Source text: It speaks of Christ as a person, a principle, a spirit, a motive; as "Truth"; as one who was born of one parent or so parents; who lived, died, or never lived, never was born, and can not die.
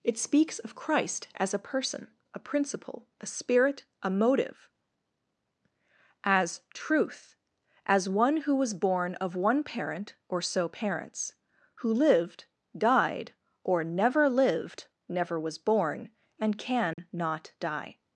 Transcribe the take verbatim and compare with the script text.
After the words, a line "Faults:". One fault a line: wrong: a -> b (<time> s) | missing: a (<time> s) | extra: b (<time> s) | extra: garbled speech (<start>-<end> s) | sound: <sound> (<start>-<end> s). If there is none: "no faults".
It speaks of Christ as a person, a principle, a spirit, a motive; as "Truth"; as one who was born of one parent or so parents; who lived, died, or never lived, never was born, and can not die.
Faults:
sound: dropout (16.9-17.0 s)